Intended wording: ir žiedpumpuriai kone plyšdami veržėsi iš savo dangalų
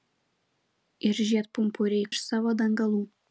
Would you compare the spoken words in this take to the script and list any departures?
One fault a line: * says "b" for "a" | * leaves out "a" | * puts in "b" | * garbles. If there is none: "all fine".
* leaves out "kone plyšdami veržėsi"